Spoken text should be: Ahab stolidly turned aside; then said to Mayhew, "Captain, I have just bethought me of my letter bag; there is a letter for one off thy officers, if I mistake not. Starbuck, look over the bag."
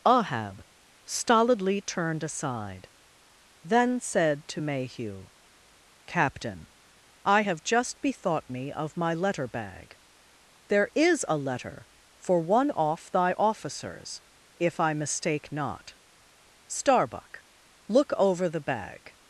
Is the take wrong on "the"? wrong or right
right